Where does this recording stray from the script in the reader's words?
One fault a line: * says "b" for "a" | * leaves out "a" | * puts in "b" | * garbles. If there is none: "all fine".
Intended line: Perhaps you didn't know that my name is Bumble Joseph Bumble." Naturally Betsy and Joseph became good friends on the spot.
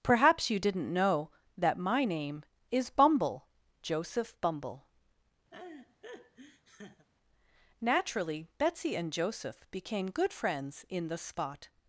* says "in" for "on"